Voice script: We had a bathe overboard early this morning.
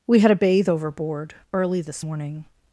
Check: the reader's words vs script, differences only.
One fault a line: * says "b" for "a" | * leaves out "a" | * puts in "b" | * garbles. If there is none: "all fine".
all fine